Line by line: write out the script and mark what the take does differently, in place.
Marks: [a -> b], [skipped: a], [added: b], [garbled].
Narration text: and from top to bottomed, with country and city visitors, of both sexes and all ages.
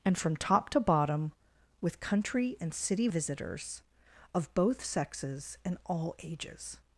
and from top to [bottomed, -> bottom] with country and city visitors, of both sexes and all ages.